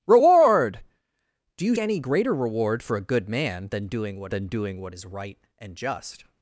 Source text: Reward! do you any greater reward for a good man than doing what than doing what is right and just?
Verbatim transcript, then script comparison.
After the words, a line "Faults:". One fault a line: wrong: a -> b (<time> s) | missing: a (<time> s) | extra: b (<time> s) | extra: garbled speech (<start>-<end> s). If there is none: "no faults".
Reward! do you any greater reward for a good man than doing what than doing what is right and just?
Faults:
no faults